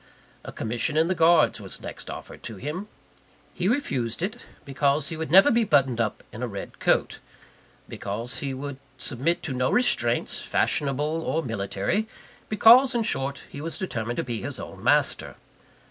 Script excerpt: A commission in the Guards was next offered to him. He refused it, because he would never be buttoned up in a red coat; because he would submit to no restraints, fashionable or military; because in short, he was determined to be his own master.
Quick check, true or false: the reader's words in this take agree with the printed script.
true